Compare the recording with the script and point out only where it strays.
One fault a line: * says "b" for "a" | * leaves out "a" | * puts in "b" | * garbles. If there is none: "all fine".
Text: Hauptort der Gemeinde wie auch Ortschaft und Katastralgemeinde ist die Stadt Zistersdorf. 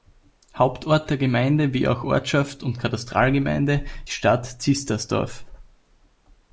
* leaves out "ist"